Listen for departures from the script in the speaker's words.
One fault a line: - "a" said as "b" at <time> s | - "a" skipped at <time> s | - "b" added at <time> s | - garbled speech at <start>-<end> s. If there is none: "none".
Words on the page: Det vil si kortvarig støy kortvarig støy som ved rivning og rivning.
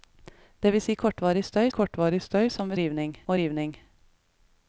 none